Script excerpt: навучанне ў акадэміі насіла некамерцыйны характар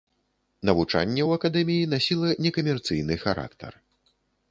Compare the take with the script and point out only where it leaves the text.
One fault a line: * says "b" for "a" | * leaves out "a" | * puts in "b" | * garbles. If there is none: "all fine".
all fine